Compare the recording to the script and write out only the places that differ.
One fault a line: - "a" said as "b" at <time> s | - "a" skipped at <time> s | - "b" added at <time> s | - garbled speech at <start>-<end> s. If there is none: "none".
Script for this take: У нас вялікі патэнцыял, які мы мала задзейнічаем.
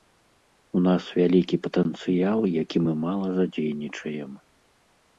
none